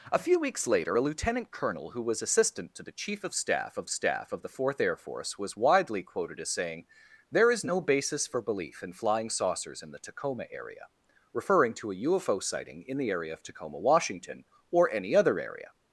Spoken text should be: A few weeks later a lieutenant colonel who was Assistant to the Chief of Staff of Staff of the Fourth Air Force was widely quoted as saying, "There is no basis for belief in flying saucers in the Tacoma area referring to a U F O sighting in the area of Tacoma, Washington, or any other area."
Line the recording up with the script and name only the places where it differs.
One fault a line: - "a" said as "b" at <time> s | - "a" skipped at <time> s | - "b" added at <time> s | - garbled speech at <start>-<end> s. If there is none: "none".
none